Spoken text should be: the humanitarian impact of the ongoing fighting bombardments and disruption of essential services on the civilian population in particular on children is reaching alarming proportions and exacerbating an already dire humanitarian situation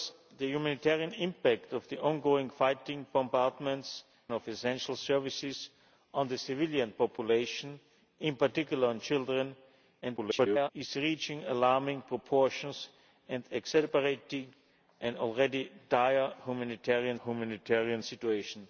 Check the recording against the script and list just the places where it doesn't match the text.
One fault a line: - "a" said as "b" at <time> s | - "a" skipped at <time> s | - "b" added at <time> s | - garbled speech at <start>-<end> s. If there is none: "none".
- "and disruption" skipped at 4.0 s
- garbled speech at 10.0-10.7 s
- "humanitarian" added at 17.2 s